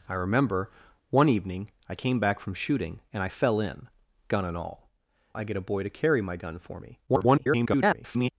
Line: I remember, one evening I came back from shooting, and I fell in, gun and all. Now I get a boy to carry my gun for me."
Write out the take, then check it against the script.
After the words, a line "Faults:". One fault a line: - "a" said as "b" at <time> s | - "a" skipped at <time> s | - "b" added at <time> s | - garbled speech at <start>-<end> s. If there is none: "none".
I remember, one evening I came back from shooting, and I fell in, gun and all. I get a boy to carry my gun for me." [garbled]
Faults:
- "Now" skipped at 4.9 s
- garbled speech at 7.1-8.3 s